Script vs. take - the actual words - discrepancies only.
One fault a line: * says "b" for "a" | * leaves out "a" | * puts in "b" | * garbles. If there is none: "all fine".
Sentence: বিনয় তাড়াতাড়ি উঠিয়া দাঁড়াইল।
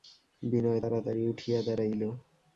all fine